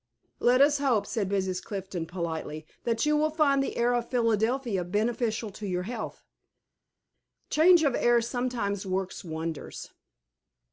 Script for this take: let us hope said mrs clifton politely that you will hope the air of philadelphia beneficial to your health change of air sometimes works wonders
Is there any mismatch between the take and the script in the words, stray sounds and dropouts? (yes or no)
yes